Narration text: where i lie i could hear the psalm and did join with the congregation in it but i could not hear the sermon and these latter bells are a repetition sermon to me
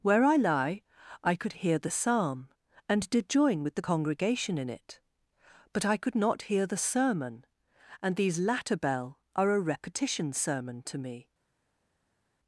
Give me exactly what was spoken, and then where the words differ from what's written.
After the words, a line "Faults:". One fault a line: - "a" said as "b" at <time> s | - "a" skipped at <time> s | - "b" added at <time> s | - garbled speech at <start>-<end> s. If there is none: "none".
where i lie i could hear the psalm and did join with the congregation in it but i could not hear the sermon and these latter bell are a repetition sermon to me
Faults:
- "bells" said as "bell" at 8.8 s